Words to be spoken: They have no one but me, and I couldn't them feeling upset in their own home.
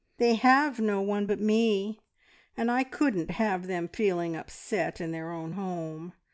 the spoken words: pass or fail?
fail